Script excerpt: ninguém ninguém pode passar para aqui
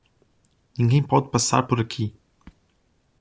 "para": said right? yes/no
no